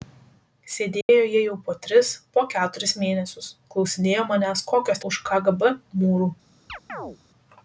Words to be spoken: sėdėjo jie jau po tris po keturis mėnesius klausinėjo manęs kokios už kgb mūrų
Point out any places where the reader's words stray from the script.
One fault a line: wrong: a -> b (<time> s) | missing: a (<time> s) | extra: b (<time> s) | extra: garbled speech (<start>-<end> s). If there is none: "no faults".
no faults